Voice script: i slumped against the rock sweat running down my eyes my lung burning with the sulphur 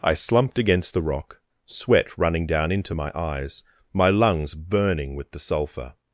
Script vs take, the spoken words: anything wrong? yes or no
yes